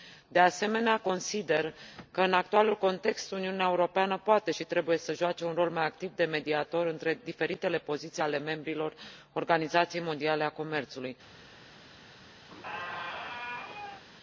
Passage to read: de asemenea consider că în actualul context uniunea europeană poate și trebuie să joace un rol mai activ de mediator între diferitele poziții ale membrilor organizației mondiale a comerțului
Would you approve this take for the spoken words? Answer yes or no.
yes